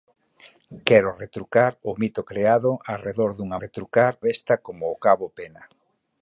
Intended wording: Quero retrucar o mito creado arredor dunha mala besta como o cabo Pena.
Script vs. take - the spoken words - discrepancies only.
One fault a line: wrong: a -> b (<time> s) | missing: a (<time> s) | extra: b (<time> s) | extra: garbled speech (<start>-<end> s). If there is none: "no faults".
wrong: mala -> retrucar (3.6 s)